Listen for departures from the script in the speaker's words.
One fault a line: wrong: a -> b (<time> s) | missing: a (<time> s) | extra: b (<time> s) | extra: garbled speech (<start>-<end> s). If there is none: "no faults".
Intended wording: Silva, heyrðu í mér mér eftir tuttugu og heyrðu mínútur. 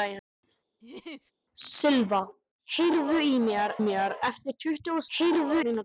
no faults